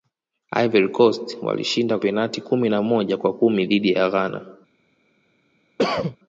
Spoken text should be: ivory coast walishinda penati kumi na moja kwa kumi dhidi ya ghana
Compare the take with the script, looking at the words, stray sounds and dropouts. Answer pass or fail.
fail